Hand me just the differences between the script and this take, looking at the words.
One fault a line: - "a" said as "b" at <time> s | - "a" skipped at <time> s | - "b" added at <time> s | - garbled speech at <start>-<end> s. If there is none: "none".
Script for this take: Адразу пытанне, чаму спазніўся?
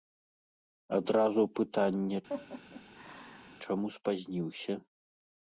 none